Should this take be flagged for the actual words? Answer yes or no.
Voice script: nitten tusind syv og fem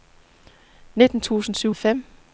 no